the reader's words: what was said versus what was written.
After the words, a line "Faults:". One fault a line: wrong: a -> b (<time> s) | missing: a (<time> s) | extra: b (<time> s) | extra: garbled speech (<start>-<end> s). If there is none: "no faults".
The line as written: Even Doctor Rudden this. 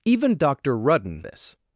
Even Doctor Rudden this.
Faults:
no faults